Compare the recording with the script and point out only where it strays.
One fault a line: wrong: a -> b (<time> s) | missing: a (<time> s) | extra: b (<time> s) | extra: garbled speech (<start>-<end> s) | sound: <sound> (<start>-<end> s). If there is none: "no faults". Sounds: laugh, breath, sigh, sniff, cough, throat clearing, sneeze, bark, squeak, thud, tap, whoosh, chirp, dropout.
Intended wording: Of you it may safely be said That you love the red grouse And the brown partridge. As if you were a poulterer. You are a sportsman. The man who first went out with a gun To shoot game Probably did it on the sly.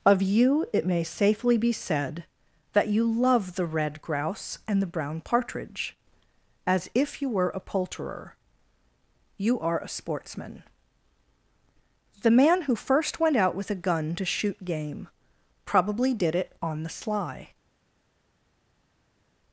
no faults